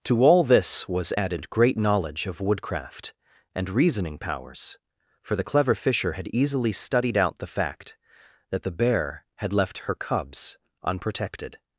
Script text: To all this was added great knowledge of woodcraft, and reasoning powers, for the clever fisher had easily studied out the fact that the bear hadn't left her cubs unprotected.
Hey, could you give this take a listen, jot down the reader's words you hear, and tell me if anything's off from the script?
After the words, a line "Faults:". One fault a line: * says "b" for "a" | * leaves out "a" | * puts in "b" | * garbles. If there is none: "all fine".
To all this was added great knowledge of woodcraft, and reasoning powers, for the clever fisher had easily studied out the fact that the bear had left her cubs unprotected.
Faults:
* says "had" for "hadn't"